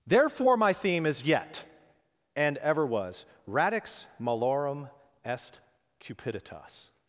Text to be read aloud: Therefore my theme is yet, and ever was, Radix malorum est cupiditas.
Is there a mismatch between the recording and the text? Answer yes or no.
no